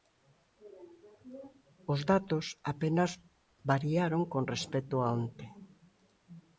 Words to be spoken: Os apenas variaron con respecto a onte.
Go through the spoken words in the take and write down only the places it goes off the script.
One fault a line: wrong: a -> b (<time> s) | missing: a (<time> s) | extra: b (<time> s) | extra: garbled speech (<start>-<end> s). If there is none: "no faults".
extra: datos (2.1 s)